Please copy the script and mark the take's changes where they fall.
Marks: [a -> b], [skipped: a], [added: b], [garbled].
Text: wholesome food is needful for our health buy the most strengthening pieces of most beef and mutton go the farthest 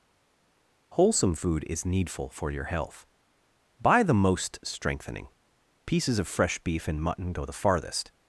wholesome food is needful for [our -> your] health buy the most strengthening pieces of [most -> fresh] beef and mutton go the farthest